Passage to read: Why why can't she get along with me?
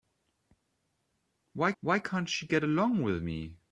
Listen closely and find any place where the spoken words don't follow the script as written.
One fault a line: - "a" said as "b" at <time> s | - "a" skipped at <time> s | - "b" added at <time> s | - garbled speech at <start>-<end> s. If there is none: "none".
none